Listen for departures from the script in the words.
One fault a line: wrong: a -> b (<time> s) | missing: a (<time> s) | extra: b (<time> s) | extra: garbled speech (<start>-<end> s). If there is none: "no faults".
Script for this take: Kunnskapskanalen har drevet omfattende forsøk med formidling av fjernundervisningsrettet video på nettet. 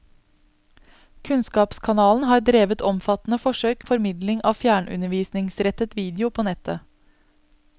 missing: med (3.9 s)